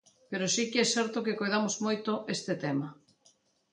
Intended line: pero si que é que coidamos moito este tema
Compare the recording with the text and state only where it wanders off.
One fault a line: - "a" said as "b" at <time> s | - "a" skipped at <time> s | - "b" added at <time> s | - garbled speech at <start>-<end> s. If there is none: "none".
- "certo" added at 0.9 s